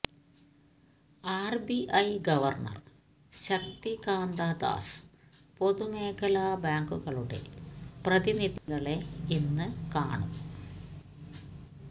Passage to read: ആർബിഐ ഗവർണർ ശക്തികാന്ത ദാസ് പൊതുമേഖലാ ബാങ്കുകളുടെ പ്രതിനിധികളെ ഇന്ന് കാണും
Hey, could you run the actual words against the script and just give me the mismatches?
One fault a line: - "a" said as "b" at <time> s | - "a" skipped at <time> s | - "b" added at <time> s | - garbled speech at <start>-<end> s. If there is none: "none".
none